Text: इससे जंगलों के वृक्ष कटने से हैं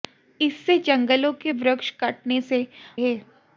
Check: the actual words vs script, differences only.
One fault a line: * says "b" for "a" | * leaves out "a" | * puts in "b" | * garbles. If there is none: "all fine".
all fine